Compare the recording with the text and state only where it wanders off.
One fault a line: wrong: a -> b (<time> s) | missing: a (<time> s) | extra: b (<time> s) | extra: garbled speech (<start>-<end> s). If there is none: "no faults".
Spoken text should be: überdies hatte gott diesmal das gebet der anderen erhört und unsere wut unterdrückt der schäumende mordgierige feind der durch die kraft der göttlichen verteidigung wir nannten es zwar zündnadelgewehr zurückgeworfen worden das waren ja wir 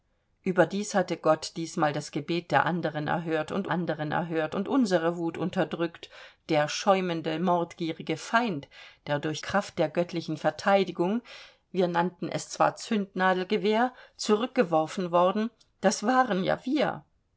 extra: anderen erhört und (3.7 s)
missing: die (9.4 s)